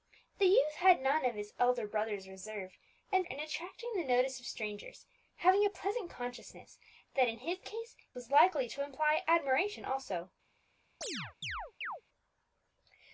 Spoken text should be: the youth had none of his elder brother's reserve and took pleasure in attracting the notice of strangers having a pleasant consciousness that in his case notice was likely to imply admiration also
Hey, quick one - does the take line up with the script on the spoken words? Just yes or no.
no